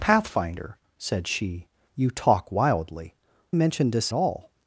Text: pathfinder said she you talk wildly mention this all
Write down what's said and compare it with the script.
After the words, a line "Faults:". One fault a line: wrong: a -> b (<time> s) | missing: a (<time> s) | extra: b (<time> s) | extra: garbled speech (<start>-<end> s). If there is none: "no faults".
pathfinder said she you talk wildly mention this all
Faults:
no faults